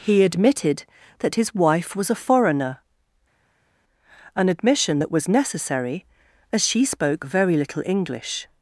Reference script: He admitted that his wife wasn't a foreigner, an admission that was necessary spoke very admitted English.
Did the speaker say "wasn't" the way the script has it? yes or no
no